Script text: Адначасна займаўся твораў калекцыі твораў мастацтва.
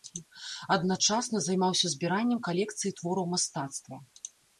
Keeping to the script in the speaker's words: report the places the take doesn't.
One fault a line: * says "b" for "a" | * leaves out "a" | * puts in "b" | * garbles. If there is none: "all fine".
* says "збіраннем" for "твораў"